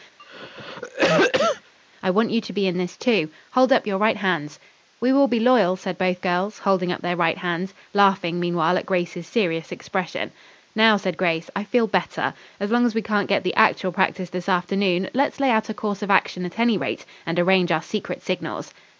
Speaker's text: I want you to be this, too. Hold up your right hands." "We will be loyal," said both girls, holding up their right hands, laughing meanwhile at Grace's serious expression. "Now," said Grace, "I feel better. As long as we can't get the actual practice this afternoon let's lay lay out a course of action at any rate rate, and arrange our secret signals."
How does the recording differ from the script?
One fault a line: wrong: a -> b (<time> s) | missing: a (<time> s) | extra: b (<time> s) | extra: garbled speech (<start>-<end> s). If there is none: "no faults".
extra: in (2.7 s)
missing: lay (15.5 s)
missing: rate (17.1 s)